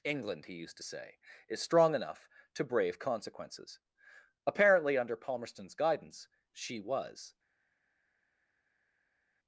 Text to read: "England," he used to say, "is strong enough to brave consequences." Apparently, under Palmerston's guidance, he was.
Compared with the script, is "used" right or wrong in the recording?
right